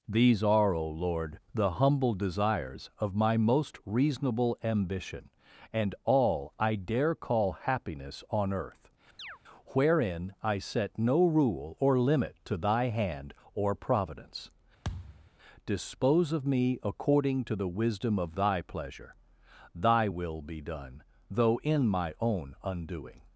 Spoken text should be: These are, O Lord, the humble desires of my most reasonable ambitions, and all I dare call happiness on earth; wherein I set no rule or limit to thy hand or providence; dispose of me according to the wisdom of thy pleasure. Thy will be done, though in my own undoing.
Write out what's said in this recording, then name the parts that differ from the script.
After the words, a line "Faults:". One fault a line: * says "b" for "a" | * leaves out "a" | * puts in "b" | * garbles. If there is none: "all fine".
These are, O Lord, the humble desires of my most reasonable ambition, and all I dare call happiness on earth; wherein I set no rule or limit to thy hand or providence; dispose of me according to the wisdom of thy pleasure. Thy will be done, though in my own undoing.
Faults:
* says "ambition" for "ambitions"